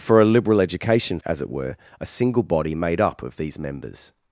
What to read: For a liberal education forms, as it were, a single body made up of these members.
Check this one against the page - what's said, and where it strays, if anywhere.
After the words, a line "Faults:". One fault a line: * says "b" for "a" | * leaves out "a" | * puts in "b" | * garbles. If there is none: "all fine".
For a liberal education as it were, a single body made up of these members.
Faults:
* leaves out "forms"